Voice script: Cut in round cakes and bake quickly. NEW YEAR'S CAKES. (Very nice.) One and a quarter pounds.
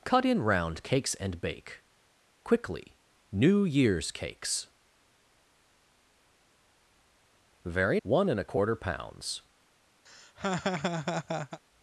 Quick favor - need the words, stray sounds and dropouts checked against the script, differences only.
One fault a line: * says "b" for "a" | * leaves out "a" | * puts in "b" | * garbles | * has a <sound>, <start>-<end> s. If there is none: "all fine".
* leaves out "nice"
* has a laugh, 10.1-11.6 s